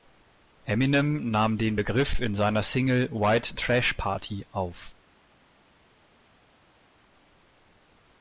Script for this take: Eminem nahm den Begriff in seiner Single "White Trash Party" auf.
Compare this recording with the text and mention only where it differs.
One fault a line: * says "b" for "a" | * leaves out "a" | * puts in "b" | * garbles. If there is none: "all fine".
all fine